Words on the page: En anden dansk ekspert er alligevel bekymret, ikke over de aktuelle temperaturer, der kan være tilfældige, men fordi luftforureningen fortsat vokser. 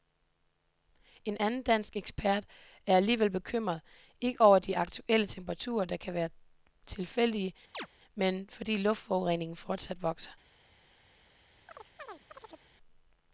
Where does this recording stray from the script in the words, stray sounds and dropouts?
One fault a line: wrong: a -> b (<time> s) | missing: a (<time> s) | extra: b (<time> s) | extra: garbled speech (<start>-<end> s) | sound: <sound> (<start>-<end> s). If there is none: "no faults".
sound: chirp (7.7-7.9 s)
sound: chirp (11.7-12.7 s)